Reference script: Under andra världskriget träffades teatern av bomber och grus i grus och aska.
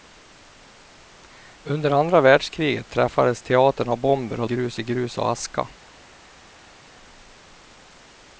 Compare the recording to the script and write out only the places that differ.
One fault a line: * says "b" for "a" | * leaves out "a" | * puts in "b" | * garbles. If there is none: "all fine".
all fine